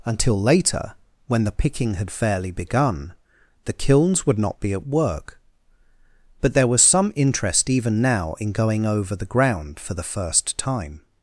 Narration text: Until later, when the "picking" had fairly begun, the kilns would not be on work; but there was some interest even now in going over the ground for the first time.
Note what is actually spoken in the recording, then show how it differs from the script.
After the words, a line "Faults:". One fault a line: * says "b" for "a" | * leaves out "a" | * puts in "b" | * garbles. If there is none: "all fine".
Until later, when the "picking" had fairly begun, the kilns would not be at work; but there was some interest even now in going over the ground for the first time.
Faults:
* says "at" for "on"